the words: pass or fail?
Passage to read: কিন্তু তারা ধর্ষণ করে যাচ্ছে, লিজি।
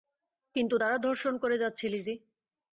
pass